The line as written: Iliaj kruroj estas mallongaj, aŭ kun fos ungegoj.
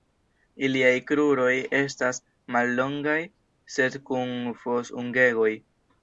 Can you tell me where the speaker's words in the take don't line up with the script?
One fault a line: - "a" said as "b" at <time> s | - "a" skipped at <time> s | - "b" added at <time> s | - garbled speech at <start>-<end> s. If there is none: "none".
- "aŭ" said as "sed" at 3.8 s